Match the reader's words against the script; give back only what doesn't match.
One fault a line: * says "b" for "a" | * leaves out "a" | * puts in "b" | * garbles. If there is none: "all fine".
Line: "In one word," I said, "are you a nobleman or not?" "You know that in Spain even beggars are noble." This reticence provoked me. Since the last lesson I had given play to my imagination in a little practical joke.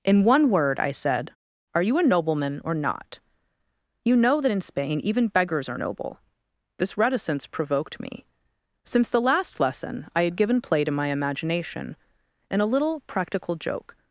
all fine